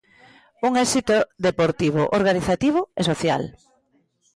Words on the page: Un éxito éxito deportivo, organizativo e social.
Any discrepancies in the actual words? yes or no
yes